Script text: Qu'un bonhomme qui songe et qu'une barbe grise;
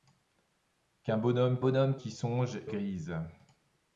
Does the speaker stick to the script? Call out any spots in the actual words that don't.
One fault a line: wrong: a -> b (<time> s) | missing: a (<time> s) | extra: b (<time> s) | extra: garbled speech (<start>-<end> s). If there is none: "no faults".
extra: bonhomme (1.6 s)
missing: et qu'une barbe (2.6 s)